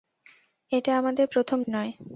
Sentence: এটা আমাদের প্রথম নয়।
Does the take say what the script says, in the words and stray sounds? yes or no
yes